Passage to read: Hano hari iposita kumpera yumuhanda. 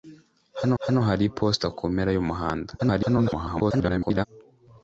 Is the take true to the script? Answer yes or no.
no